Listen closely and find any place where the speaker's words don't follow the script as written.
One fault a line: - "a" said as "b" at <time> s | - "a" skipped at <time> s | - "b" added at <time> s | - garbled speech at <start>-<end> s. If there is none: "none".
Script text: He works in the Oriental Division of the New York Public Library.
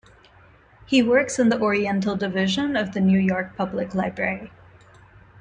none